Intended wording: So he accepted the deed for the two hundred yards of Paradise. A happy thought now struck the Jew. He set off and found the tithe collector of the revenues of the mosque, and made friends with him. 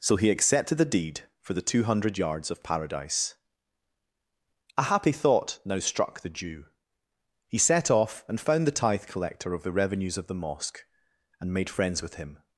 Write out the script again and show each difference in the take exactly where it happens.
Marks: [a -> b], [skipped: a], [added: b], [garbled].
So he accepted the deed for the two hundred yards of Paradise. A happy thought now struck the Jew. He set off and found the tithe collector of the revenues of the mosque, and made friends with him.